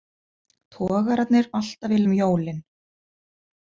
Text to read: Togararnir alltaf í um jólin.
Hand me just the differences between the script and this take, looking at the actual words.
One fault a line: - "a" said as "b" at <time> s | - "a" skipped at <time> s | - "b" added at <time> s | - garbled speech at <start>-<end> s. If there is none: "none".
none